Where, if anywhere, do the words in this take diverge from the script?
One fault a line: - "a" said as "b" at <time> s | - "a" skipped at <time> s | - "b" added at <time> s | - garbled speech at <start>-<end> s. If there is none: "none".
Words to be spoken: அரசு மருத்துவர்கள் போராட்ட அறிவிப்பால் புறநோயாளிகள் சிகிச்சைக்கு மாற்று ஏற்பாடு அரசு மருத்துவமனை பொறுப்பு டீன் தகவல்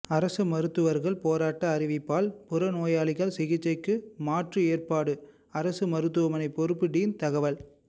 none